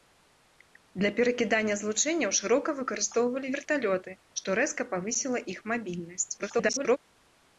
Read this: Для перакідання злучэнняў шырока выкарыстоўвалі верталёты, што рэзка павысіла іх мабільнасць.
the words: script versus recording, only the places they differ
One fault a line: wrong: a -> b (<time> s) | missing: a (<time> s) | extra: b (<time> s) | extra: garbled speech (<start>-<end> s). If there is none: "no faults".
extra: garbled speech (6.4-7.0 s)